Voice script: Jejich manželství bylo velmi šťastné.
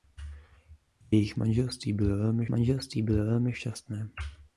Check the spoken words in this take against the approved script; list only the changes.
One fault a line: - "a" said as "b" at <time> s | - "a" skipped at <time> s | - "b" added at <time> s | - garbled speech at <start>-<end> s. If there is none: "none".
- "manželství bylo velmi" added at 2.5 s